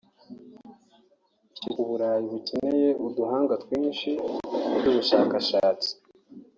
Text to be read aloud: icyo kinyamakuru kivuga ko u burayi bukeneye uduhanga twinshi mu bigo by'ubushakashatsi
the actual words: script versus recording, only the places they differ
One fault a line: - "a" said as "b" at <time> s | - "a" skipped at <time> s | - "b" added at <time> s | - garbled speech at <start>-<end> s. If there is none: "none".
- "kinyamakuru kivuga ko" skipped at 1.7 s
- "bigo" skipped at 4.8 s